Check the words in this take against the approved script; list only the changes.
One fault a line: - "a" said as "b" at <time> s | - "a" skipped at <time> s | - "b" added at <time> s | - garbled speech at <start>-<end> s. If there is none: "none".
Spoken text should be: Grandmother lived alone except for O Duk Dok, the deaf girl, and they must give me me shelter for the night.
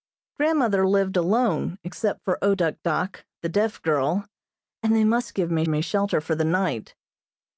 none